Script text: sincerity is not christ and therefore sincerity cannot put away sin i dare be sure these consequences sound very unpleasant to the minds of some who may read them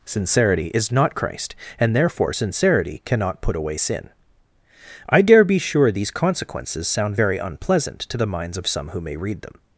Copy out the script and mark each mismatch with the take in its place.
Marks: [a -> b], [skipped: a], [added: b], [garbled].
sincerity is not christ and therefore sincerity cannot put away sin i dare be sure these consequences sound very unpleasant to the minds of some who may read them